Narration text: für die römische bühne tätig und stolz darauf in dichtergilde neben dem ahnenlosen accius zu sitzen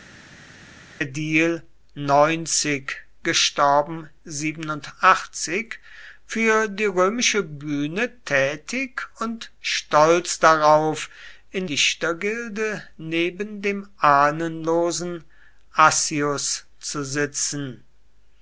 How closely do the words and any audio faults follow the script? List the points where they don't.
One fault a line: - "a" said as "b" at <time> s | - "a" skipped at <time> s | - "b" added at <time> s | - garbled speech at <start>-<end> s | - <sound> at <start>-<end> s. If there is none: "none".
none